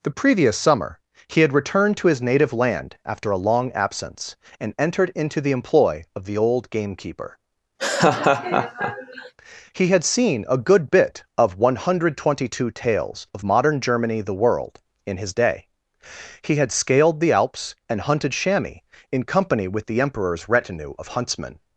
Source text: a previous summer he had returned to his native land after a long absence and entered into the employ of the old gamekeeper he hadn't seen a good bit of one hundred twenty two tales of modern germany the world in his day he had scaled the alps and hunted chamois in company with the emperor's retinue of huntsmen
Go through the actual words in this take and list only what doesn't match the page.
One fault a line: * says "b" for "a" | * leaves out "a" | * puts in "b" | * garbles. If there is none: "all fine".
* says "the" for "a"
* says "had" for "hadn't"